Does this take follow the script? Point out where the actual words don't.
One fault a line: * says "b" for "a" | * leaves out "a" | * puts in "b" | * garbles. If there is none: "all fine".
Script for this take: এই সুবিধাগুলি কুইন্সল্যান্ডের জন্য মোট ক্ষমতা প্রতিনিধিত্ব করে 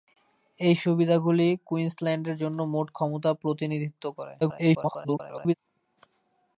* garbles